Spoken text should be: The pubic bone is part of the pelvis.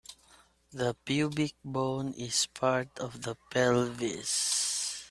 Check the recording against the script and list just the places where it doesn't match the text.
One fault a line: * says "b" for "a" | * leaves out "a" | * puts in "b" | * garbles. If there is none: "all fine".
all fine